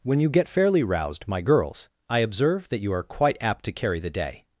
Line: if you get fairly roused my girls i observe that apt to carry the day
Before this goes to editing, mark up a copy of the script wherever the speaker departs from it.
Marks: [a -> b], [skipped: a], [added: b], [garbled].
[if -> when] you get fairly roused my girls i observe that [added: you are quite] apt to carry the day